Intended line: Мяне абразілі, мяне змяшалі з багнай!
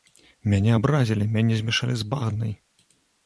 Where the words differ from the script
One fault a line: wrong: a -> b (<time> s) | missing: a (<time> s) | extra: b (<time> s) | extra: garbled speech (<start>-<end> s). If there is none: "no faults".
no faults